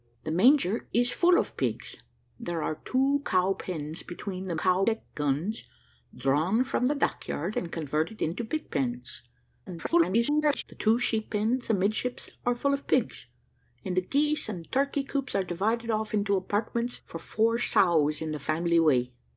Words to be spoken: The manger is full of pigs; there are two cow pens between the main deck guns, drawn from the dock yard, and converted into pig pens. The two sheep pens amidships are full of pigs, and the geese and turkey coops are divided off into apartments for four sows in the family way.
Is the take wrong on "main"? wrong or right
wrong